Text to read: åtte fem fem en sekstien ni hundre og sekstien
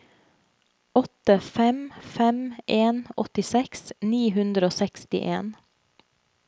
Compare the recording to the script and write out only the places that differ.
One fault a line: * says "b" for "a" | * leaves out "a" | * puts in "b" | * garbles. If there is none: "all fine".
* says "åttiseks" for "sekstien"